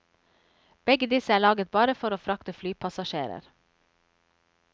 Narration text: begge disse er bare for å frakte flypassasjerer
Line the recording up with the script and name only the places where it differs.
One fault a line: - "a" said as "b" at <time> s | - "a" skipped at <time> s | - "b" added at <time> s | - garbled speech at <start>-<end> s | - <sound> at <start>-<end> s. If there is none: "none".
- "laget" added at 1.4 s